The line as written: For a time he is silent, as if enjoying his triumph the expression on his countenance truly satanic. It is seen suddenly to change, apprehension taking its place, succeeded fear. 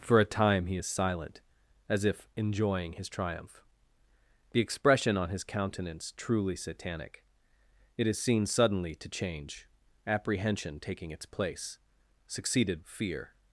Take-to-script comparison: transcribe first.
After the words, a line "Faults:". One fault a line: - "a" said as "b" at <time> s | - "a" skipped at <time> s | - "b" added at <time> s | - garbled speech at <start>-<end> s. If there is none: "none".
For a time he is silent, as if enjoying his triumph the expression on his countenance truly satanic. It is seen suddenly to change, apprehension taking its place, succeeded fear.
Faults:
none